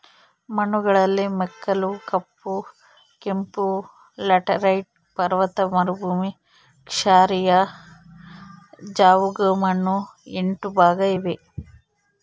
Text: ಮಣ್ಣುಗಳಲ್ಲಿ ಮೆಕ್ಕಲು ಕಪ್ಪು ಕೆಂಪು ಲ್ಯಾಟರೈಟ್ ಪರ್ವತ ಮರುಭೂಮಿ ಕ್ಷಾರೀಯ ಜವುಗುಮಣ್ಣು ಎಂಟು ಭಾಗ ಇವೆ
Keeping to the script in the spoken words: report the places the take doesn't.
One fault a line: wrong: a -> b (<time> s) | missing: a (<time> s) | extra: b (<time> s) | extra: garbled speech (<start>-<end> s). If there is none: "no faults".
no faults